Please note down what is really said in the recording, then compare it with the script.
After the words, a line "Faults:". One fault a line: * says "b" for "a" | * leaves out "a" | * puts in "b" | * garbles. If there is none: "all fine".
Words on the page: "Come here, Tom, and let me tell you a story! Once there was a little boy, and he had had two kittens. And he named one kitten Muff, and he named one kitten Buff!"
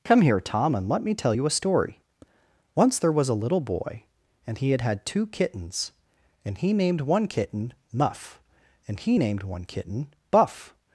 "Come here, Tom, and let me tell you a story! Once there was a little boy, and he had had two kittens. And he named one kitten Muff, and he named one kitten Buff!"
Faults:
all fine